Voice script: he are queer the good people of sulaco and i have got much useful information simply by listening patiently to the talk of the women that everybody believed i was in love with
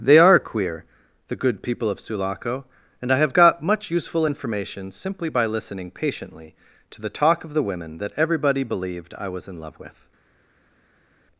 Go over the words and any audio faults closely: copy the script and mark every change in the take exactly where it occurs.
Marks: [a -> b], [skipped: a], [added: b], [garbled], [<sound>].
[he -> they] are queer the good people of sulaco and i have got much useful information simply by listening patiently to the talk of the women that everybody believed i was in love with